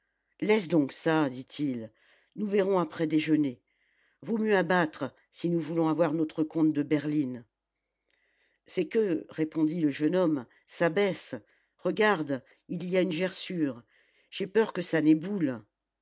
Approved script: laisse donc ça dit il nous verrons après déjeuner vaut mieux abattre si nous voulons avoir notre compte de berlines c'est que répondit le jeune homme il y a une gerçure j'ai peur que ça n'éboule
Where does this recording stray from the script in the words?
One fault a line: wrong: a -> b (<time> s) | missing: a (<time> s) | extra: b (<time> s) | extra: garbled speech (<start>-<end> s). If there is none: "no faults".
extra: ça baisse regarde (10.7 s)